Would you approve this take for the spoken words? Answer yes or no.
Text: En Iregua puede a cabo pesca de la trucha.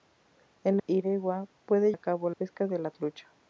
yes